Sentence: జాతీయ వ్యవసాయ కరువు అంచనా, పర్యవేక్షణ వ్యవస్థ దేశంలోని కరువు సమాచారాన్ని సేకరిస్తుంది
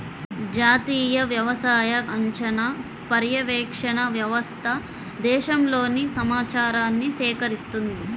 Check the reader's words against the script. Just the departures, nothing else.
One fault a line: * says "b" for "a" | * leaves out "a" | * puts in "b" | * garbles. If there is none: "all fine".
* leaves out "కరువు"
* leaves out "కరువు"